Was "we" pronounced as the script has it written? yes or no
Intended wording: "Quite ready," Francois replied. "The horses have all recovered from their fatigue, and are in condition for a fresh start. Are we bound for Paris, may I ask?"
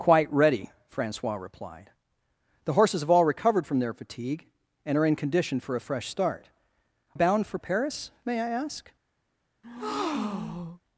no